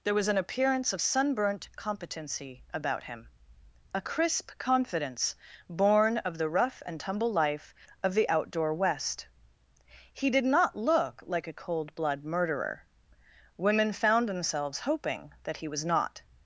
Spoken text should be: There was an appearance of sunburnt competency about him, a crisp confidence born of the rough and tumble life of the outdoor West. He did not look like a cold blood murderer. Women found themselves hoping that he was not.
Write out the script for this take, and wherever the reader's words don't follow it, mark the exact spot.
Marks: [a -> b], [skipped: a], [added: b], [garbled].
There was an appearance of sunburnt competency about him, a crisp confidence born of the rough and tumble life of the outdoor West. He did not look like a cold blood murderer. Women found themselves hoping that he was not.